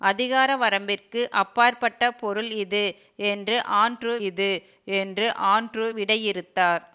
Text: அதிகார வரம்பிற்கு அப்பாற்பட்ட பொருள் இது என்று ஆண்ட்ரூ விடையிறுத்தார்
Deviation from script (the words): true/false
true